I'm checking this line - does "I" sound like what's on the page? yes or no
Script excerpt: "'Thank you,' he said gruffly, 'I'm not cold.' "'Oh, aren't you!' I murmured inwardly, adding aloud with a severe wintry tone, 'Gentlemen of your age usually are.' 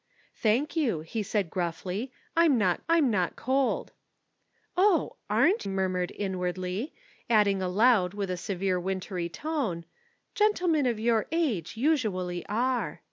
no